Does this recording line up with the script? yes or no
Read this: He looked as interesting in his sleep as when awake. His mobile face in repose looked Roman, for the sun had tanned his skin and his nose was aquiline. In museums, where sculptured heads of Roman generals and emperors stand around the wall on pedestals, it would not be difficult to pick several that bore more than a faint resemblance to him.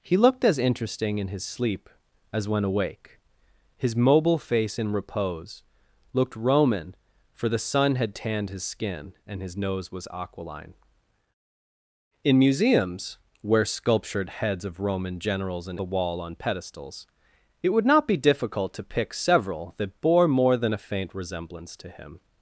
no